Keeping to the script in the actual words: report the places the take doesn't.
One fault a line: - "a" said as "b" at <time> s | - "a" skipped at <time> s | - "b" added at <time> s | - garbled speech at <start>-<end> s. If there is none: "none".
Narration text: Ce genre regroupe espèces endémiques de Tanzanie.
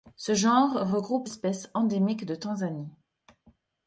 none